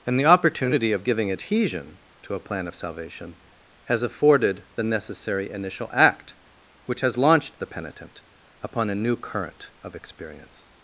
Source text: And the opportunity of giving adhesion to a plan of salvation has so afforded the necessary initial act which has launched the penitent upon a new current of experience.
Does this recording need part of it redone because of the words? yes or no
yes